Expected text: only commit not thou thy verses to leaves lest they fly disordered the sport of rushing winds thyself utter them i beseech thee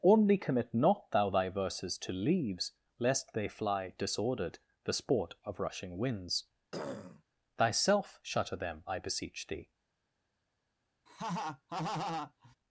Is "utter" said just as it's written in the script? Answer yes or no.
no